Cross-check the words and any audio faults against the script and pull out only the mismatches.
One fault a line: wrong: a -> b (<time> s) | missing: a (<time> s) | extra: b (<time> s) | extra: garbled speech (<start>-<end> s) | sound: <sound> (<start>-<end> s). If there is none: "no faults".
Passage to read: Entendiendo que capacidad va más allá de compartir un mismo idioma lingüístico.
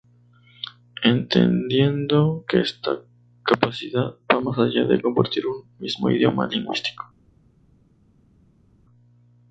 extra: esta (2.6 s)